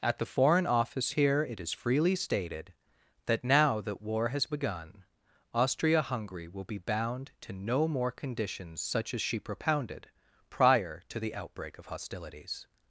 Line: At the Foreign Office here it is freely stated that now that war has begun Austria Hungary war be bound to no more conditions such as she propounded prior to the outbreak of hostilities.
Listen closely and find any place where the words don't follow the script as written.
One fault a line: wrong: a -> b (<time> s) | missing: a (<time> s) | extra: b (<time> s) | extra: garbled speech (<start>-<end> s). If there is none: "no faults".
wrong: war -> will (6.5 s)